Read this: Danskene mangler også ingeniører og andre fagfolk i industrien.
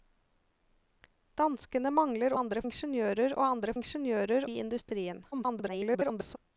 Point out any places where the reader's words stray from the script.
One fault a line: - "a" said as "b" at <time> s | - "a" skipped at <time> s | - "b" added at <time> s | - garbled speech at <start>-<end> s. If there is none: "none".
- "også" said as "andre" at 2.3 s
- "fagfolk" said as "ingeniører" at 3.8 s
- garbled speech at 5.3-6.4 s